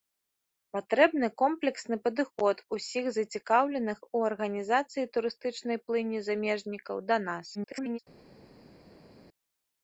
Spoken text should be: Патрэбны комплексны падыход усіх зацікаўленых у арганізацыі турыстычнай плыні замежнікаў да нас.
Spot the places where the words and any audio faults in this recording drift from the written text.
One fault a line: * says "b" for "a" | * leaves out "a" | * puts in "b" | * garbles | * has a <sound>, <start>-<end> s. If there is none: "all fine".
* garbles